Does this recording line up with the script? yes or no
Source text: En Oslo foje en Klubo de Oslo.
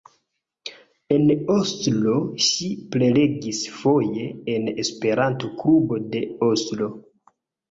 no